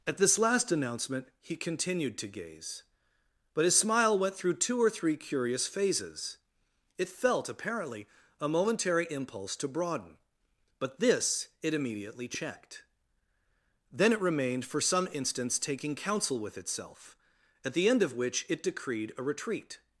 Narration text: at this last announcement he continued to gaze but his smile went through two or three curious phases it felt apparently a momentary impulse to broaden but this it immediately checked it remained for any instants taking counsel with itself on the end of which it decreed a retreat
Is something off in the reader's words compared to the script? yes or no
yes